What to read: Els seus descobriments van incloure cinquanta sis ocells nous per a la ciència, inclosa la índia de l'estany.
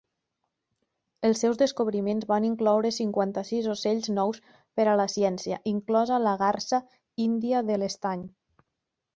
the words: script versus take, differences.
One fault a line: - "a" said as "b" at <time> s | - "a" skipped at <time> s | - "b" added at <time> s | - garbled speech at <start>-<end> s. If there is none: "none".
- "garsa" added at 6.5 s